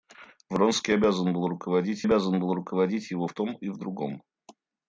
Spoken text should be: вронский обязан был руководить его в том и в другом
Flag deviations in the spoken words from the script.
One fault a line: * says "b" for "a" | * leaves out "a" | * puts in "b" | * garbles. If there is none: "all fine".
* puts in "обязан был руководить"